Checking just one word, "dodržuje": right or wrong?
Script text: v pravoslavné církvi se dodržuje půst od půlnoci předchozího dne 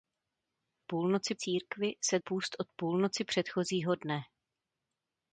wrong